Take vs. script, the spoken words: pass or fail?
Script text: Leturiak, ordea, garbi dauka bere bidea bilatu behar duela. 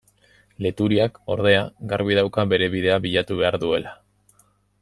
pass